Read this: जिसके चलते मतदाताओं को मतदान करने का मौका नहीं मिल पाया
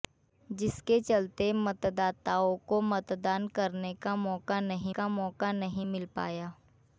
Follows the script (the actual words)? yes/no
no